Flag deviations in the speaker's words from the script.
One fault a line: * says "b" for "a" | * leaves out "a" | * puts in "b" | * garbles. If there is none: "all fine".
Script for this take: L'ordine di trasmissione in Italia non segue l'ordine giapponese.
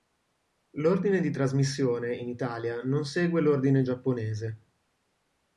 all fine